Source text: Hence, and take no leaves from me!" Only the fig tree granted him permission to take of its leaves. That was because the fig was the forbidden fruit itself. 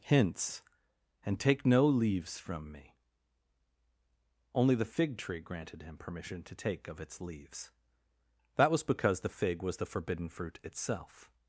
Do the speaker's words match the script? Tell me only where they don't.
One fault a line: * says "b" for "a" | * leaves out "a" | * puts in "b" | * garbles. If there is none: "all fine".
* says "Hints" for "Hence"